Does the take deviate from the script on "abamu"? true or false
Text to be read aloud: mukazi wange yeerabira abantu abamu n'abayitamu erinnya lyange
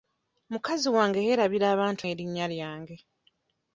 true